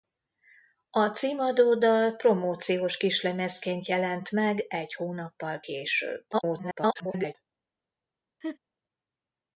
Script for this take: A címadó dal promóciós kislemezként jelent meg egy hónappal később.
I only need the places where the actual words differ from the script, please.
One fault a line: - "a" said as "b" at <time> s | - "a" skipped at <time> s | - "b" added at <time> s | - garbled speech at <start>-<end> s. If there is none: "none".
- garbled speech at 6.3-7.3 s